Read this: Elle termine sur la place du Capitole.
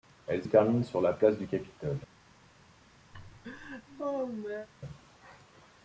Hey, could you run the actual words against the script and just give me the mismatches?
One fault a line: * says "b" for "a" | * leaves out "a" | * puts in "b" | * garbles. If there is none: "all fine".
all fine